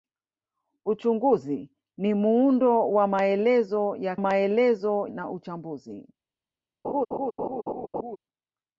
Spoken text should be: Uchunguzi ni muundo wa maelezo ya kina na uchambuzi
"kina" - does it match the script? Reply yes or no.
no